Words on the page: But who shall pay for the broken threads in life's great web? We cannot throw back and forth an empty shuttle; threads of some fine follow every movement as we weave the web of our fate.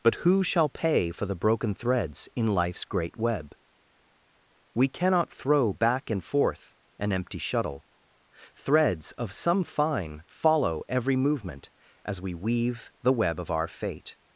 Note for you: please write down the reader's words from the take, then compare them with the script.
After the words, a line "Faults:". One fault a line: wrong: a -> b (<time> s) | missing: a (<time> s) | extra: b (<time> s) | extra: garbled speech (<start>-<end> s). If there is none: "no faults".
But who shall pay for the broken threads in life's great web? We cannot throw back and forth an empty shuttle; threads of some fine follow every movement as we weave the web of our fate.
Faults:
no faults